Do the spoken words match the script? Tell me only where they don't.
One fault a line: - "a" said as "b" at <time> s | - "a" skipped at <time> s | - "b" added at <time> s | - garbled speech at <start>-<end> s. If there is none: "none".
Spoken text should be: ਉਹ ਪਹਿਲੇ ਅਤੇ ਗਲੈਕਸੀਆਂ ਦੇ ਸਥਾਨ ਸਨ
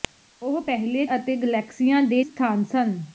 none